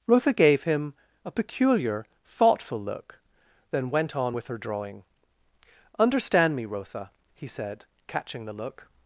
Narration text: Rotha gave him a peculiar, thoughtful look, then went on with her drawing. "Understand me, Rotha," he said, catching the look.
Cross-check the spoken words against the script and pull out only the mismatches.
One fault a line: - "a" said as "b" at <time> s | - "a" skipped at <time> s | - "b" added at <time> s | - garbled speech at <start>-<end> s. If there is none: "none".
none